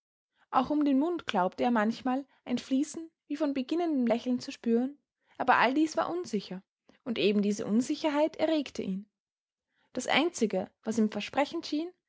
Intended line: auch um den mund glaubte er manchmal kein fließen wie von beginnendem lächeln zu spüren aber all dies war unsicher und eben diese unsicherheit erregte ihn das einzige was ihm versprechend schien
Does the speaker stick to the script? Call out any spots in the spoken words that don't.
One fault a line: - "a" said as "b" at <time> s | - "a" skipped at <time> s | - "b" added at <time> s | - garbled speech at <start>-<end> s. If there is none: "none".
- "kein" said as "ein" at 2.4 s